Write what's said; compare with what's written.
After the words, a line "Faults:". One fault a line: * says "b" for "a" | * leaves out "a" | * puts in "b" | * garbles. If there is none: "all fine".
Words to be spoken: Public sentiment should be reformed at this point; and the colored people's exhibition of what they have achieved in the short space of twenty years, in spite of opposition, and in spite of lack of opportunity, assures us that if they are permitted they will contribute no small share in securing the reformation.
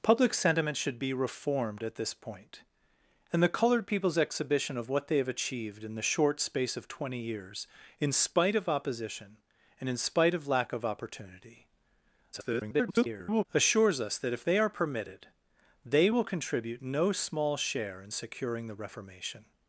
Public sentiment should be reformed at this point; and the colored people's exhibition of what they have achieved in the short space of twenty years, in spite of opposition, and in spite of lack of opportunity, [garbled] assures us that if they are permitted they will contribute no small share in securing the reformation.
Faults:
* garbles